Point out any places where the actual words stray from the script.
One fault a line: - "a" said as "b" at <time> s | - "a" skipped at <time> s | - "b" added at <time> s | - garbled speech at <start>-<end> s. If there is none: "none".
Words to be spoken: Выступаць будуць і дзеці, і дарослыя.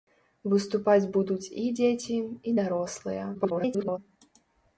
- garbled speech at 3.3-4.0 s